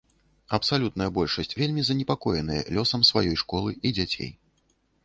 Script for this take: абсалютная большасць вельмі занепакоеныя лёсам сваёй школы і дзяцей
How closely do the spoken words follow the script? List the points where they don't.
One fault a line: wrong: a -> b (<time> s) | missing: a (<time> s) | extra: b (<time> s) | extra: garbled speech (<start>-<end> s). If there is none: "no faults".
no faults